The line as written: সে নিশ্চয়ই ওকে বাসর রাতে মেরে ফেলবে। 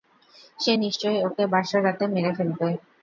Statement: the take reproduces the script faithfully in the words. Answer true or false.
true